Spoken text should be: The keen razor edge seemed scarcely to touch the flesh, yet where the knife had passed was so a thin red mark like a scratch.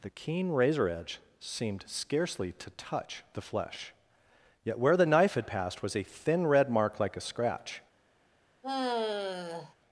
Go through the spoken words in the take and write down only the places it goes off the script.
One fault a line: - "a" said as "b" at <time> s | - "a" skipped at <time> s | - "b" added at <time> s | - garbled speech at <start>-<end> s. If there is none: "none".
- "so" skipped at 5.9 s